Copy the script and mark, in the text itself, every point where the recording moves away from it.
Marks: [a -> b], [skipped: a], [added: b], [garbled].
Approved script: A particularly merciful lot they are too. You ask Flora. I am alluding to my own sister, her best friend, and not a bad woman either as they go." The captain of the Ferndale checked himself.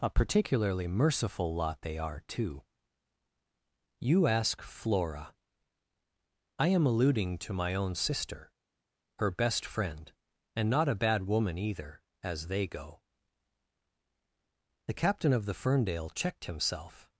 A particularly merciful lot they are too. You ask Flora. I am alluding to my own sister, her best friend, and not a bad woman either as they go." The captain of the Ferndale checked himself.